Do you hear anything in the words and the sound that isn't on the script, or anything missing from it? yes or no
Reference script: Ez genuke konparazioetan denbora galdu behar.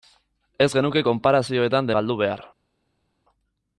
yes